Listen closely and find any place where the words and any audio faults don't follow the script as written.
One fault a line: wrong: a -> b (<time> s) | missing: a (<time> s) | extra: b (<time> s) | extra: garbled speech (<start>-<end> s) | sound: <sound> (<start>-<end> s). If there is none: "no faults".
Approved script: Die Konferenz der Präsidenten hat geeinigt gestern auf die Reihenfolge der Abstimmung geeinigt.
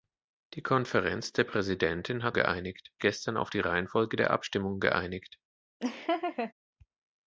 sound: laugh (5.8-6.5 s)